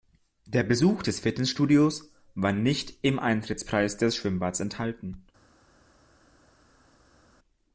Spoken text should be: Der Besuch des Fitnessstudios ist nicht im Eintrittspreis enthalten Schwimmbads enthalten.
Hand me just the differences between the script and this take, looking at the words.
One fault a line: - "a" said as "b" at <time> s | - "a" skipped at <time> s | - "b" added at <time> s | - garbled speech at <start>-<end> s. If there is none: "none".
- "ist" said as "war" at 2.3 s
- "enthalten" said as "des" at 4.0 s